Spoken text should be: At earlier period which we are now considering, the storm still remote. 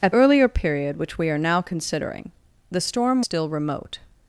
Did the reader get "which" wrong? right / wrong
right